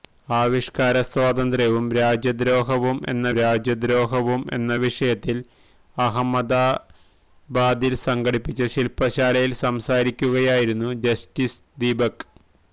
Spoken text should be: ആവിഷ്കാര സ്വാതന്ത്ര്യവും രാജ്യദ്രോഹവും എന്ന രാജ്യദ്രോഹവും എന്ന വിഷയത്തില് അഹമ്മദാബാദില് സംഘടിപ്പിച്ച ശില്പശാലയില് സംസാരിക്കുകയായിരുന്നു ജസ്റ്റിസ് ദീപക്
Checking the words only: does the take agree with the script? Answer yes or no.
yes